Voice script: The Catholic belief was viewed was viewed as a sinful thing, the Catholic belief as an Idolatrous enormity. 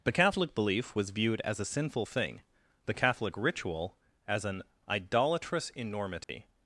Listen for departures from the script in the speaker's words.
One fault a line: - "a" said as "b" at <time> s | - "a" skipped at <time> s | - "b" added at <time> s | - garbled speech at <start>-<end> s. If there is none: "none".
- "was viewed" skipped at 1.4 s
- "belief" said as "ritual" at 3.4 s